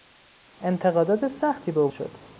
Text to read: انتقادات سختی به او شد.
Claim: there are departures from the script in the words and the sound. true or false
false